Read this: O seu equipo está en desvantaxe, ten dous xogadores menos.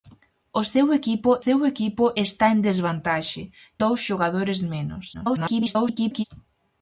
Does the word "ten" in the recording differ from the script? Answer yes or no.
yes